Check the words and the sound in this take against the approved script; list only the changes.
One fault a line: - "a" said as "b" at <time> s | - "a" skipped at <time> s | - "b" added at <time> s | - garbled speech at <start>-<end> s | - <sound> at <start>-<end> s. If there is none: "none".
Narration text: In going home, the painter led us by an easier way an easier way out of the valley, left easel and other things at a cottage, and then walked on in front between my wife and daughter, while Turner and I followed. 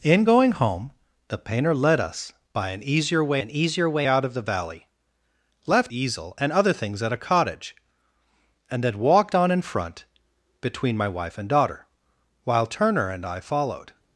none